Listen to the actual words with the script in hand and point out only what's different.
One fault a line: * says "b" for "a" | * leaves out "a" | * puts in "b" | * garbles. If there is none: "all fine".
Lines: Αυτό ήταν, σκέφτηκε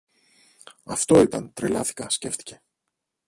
* puts in "τρελάθηκα"